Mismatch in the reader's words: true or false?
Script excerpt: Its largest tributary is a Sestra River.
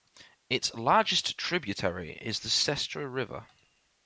true